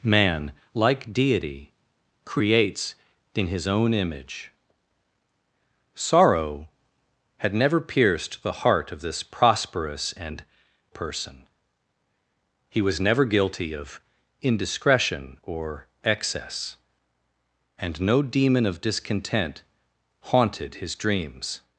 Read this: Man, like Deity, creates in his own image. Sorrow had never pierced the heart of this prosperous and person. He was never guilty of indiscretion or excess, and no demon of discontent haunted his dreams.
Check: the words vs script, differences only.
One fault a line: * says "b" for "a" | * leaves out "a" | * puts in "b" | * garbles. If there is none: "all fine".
all fine